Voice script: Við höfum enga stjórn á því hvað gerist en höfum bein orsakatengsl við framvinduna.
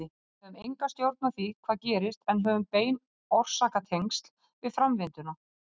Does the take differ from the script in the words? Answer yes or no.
no